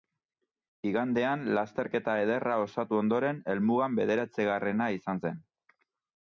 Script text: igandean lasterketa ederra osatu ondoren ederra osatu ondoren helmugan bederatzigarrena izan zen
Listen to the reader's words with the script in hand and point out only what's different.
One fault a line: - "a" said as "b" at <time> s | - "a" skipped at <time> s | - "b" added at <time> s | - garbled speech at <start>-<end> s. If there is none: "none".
- "ederra osatu ondoren" skipped at 3.4 s